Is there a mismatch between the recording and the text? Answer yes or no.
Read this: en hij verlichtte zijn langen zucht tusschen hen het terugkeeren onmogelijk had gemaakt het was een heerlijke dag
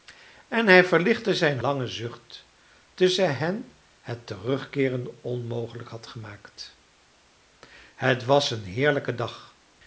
no